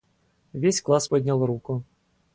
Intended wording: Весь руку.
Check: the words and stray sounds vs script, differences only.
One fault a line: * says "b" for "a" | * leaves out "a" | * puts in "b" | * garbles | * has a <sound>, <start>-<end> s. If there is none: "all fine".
* puts in "класс поднял"